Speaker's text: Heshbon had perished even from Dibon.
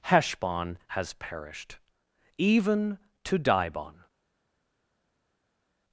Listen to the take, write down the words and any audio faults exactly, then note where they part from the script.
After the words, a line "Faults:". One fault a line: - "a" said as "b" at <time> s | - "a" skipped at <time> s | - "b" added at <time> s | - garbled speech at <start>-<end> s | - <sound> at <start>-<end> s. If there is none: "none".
Heshbon has perished even to Dibon.
Faults:
- "had" said as "has" at 0.9 s
- "from" said as "to" at 3.2 s